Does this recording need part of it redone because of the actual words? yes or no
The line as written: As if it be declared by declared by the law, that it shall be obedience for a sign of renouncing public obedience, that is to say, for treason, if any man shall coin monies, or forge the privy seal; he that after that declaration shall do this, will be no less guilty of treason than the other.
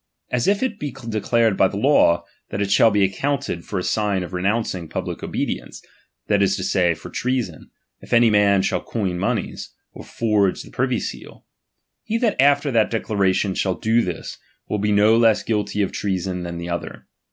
yes